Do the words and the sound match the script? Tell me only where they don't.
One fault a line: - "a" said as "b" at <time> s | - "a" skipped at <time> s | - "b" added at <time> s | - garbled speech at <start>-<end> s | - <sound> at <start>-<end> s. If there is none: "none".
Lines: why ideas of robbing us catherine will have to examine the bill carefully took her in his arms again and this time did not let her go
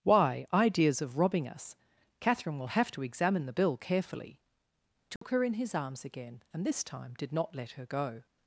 - dropout at 5.2-5.2 s